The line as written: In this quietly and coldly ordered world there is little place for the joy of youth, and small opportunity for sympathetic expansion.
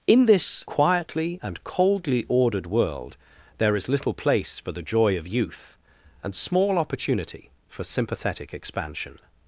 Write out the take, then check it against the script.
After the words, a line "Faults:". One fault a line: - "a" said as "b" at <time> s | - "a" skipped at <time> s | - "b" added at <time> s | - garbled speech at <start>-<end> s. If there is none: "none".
In this quietly and coldly ordered world there is little place for the joy of youth, and small opportunity for sympathetic expansion.
Faults:
none